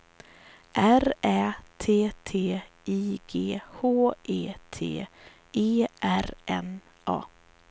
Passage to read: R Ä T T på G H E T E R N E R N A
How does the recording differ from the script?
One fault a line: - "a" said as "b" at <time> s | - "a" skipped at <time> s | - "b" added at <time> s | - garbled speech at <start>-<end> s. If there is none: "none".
- "på" said as "I" at 2.9 s
- "E R N" skipped at 6.8 s